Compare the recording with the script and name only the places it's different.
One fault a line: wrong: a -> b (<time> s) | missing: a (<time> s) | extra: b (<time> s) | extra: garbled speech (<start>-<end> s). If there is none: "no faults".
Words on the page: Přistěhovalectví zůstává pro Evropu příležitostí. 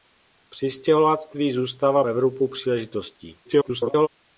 missing: pro (2.0 s)
extra: garbled speech (3.4-4.1 s)